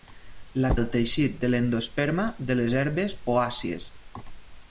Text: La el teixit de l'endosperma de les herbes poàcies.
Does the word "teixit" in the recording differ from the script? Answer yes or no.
no